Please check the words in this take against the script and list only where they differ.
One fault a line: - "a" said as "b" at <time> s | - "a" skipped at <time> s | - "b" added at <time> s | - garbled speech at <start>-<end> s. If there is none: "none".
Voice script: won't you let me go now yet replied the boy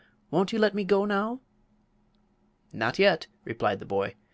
- "not" added at 2.7 s